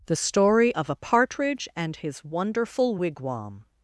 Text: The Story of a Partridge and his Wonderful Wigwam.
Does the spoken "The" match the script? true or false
true